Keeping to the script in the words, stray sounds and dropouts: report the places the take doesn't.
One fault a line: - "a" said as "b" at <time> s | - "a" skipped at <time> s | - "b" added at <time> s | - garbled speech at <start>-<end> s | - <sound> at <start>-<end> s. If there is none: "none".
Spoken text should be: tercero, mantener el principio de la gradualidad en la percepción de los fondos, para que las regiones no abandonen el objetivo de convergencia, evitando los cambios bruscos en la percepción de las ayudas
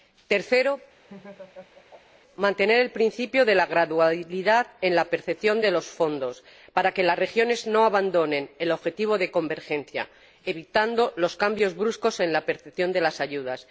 - laugh at 1.0-2.2 s